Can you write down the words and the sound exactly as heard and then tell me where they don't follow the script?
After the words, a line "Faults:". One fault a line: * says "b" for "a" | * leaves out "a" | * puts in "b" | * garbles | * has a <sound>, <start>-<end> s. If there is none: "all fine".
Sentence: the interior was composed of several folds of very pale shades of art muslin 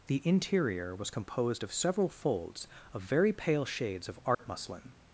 the interior was composed of several folds of very pale shades of art muslin
Faults:
* has a dropout, 4.3-4.4 s